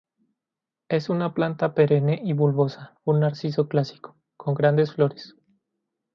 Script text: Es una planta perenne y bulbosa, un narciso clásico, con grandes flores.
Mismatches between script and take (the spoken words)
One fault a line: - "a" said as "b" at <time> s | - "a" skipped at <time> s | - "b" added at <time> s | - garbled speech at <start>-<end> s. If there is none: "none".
none